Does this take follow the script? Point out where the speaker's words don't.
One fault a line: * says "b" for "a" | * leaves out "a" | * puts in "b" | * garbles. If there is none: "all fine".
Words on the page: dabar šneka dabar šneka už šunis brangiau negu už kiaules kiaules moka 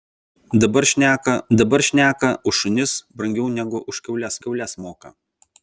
all fine